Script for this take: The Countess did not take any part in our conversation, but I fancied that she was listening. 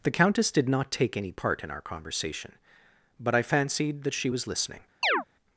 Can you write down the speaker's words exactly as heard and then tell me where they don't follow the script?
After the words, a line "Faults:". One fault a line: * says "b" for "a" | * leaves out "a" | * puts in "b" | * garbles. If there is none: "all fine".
The Countess did not take any part in our conversation, but I fancied that she was listening.
Faults:
all fine